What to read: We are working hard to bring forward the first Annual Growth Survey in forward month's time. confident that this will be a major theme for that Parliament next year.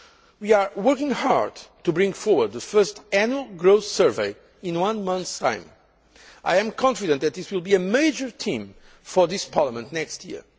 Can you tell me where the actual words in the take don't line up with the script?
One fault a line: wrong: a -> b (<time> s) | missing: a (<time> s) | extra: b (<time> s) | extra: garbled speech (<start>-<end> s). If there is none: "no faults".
wrong: forward -> one (4.8 s)
extra: I am (6.4 s)
wrong: that -> this (9.3 s)